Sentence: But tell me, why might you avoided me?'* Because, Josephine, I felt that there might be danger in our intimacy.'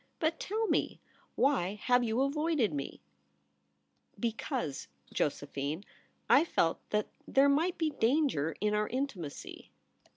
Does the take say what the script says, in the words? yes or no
no